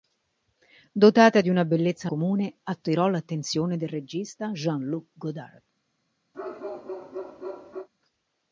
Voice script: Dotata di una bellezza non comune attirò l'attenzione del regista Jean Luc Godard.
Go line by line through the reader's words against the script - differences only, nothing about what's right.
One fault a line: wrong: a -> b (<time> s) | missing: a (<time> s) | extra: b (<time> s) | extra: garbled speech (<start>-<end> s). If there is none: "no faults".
missing: non (2.1 s)